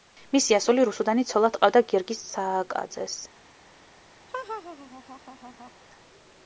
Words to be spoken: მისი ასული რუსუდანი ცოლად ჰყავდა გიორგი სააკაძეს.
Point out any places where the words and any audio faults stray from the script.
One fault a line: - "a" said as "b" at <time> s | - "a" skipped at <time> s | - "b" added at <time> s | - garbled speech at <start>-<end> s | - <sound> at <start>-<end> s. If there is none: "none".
- laugh at 4.3-5.7 s